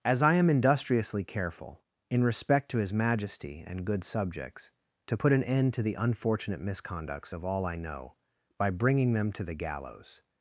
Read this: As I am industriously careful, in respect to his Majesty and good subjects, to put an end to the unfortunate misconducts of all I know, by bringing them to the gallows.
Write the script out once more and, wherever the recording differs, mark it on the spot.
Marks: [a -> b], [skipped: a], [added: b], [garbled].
As I am industriously careful, in respect to his Majesty and good subjects, to put an end to the unfortunate misconducts of all I know, by bringing them to the gallows.